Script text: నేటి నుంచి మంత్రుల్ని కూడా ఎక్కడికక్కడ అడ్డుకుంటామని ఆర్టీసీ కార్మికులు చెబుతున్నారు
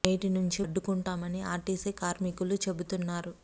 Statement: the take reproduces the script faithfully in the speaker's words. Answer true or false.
false